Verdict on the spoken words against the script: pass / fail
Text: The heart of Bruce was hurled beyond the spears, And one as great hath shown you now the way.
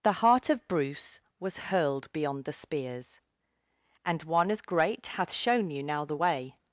pass